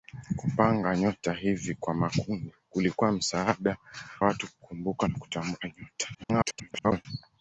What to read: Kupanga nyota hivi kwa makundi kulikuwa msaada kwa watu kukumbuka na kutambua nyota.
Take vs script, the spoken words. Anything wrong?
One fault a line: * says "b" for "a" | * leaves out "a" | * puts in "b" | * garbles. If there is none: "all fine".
* leaves out "kwa"
* garbles